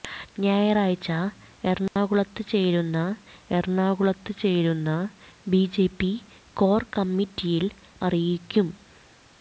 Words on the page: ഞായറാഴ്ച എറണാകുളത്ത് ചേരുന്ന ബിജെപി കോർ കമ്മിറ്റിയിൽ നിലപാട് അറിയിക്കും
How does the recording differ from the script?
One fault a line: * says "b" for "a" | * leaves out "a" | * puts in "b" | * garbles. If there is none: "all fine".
* puts in "എറണാകുളത്ത് ചേരുന്ന"
* leaves out "നിലപാട്"